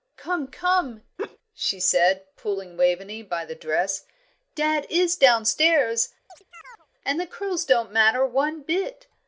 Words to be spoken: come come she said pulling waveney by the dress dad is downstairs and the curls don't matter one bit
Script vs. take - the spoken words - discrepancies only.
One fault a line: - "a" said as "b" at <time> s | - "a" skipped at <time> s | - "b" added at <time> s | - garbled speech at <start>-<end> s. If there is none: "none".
none